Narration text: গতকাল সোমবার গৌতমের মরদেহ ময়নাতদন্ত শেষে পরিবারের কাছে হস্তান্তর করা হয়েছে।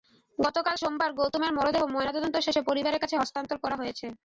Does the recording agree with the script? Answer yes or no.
yes